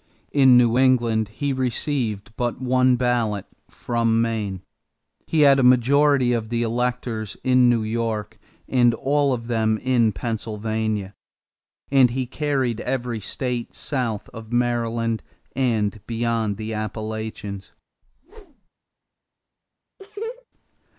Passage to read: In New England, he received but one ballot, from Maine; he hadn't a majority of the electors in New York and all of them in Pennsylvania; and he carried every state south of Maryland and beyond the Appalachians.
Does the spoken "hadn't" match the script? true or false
false